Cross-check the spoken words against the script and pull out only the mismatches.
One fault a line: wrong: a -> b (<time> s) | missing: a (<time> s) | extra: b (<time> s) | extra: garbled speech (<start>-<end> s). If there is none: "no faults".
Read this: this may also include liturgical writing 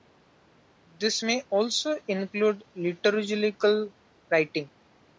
no faults